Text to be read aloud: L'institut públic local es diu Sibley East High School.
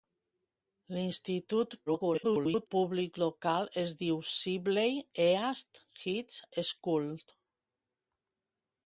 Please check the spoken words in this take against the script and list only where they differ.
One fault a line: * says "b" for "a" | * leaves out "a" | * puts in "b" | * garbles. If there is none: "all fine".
* garbles